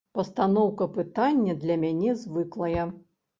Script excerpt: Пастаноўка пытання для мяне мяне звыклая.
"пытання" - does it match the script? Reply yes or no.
yes